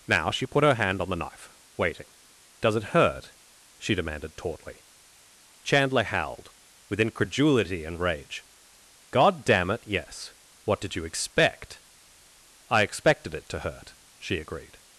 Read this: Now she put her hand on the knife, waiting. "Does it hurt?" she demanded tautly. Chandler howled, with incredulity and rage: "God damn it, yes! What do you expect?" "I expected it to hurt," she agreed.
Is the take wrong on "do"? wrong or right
wrong